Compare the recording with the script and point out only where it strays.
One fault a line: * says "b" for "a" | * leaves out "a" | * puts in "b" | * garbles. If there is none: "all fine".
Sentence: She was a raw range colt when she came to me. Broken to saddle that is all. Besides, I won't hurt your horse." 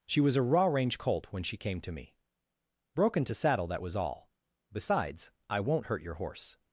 * says "was" for "is"